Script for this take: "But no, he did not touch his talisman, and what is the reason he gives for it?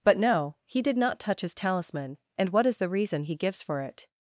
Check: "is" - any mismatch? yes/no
no